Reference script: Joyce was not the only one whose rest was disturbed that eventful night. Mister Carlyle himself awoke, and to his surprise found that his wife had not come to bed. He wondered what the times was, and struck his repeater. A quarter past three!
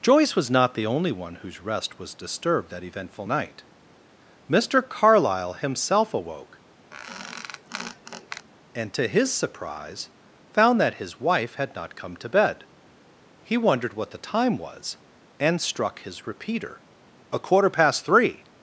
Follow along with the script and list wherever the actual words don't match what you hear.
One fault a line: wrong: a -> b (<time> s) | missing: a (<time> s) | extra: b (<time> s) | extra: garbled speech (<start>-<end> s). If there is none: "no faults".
wrong: times -> time (14.2 s)